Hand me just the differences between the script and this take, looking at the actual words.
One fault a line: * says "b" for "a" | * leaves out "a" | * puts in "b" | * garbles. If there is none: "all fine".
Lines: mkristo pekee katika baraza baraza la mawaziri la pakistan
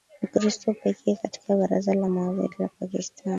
* leaves out "baraza"